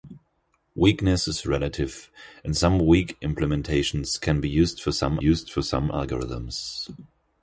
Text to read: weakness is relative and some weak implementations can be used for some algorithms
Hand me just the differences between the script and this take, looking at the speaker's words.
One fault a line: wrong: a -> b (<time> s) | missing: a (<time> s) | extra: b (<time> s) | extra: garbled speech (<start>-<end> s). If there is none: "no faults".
extra: used for some (5.2 s)